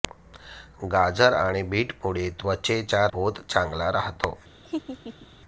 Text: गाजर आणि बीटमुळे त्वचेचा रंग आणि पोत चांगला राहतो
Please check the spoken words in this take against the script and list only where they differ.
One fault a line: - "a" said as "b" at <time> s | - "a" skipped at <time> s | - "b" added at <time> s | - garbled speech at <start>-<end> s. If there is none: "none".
- "रंग आणि" skipped at 3.1 s